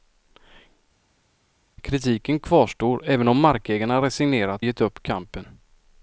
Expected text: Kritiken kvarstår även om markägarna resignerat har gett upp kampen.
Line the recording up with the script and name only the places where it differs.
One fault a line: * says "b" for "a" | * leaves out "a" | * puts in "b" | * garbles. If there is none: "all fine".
* leaves out "har"